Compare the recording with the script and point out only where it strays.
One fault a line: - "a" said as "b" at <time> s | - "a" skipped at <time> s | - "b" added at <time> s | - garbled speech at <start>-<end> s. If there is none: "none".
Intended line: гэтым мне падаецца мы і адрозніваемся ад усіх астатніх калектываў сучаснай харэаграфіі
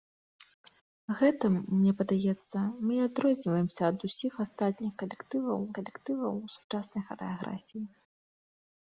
- "калектываў" added at 5.8 s